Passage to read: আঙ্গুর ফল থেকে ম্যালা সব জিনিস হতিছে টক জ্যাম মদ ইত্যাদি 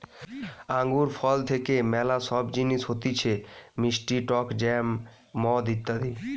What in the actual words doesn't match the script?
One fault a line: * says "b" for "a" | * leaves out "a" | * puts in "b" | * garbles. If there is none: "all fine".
* puts in "মিষ্টি"